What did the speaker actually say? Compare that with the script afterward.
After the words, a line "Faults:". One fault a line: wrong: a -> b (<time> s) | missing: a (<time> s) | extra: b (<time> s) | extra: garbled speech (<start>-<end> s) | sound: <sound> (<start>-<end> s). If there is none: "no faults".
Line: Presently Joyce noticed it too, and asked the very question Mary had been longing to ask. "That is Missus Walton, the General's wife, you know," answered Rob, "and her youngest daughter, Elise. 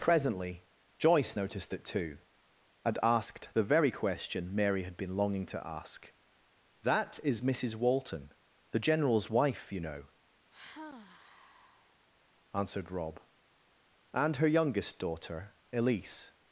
Presently Joyce noticed it too, and asked the very question Mary had been longing to ask. "That is Missus Walton, the General's wife, you know," answered Rob, "and her youngest daughter, Elise.
Faults:
sound: sigh (10.5-12.0 s)